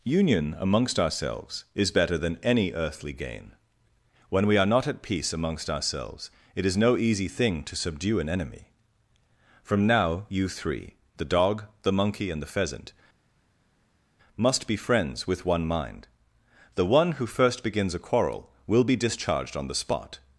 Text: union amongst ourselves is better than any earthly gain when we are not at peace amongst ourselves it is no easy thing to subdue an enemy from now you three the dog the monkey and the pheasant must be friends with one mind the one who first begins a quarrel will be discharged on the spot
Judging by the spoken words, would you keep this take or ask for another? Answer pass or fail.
pass